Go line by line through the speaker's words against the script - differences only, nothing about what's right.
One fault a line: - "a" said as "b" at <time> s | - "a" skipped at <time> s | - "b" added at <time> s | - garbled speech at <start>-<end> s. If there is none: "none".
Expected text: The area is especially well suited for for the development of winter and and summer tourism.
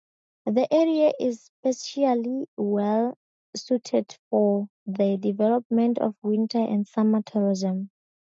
- "for" skipped at 4.7 s
- "and" skipped at 6.9 s